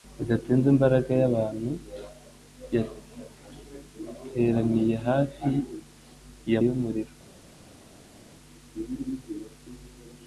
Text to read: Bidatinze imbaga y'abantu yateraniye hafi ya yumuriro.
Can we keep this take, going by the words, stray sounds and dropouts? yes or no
yes